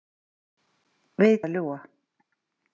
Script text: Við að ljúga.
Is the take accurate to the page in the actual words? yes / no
yes